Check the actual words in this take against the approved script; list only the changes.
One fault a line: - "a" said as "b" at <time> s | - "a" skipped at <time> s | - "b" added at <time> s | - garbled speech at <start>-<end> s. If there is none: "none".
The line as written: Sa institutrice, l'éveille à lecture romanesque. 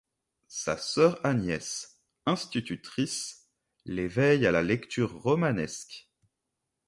- "sœur Agnès" added at 0.8 s
- "la" added at 4.5 s